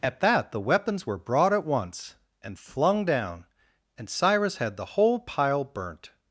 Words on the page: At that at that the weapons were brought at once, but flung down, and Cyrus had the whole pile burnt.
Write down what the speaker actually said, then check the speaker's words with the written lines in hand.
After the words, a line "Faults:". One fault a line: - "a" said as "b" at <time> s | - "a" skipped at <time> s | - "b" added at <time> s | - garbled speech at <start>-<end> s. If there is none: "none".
At that the weapons were brought at once, and flung down, and Cyrus had the whole pile burnt.
Faults:
- "at that" skipped at 0.5 s
- "but" said as "and" at 2.4 s